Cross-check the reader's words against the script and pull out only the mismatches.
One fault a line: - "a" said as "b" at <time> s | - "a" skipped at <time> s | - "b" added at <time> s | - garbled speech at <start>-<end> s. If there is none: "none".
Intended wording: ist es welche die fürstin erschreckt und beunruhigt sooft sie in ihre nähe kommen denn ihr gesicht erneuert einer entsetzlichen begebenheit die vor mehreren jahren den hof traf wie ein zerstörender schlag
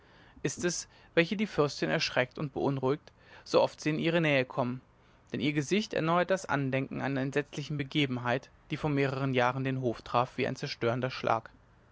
- "das andenken" added at 6.3 s